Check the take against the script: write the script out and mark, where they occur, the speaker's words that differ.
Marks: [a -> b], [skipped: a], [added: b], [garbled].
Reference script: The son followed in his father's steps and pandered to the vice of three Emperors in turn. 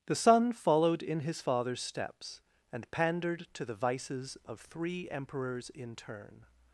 The son followed in his father's steps and pandered to the [vice -> vices] of three Emperors in turn.